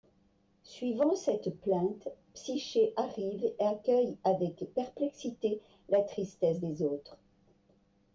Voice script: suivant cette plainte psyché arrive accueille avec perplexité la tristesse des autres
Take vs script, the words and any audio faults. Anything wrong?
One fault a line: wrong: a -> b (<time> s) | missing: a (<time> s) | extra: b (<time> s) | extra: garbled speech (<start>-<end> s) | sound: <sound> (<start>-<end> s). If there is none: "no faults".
no faults